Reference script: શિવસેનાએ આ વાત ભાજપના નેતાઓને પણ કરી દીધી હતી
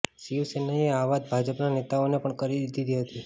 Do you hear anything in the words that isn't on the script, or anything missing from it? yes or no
no